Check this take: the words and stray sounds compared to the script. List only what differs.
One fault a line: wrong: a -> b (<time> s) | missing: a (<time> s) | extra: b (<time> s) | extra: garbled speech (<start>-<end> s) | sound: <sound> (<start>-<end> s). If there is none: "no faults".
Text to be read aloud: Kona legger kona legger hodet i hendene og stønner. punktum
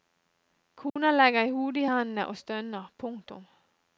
sound: dropout (0.9-1.0 s)
missing: kona legger (1.5 s)